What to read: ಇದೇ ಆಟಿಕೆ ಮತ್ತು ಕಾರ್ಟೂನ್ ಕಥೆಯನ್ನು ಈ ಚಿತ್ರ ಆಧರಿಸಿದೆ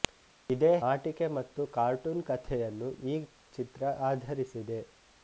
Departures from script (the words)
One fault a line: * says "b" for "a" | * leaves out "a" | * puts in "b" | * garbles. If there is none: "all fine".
all fine